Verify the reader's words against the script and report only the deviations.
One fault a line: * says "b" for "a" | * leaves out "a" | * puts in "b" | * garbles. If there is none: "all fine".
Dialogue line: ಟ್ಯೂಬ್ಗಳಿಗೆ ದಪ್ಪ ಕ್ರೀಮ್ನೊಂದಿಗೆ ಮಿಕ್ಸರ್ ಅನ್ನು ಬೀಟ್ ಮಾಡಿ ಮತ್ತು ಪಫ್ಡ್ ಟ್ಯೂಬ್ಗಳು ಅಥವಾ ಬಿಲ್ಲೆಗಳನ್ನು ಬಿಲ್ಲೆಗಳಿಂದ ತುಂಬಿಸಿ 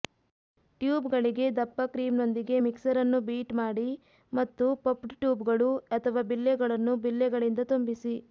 all fine